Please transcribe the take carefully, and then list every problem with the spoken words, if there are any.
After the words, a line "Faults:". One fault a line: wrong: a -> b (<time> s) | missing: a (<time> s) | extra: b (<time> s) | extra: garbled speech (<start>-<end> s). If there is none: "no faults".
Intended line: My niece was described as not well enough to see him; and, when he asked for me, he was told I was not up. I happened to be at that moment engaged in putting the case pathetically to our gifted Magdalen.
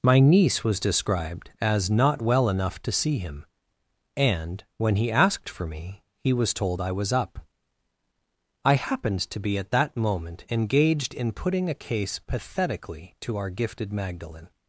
My niece was described as not well enough to see him; and, when he asked for me, he was told I was up. I happened to be at that moment engaged in putting a case pathetically to our gifted Magdalen.
Faults:
missing: not (7.1 s)
wrong: the -> a (11.7 s)